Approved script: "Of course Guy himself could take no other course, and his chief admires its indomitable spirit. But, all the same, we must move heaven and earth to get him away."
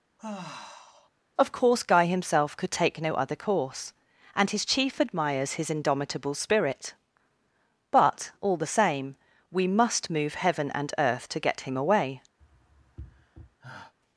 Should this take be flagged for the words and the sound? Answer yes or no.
yes